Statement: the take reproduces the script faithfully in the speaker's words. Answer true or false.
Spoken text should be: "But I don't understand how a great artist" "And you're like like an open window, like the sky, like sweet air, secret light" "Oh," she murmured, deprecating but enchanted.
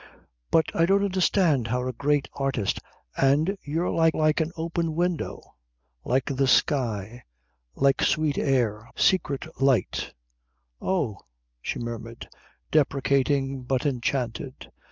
true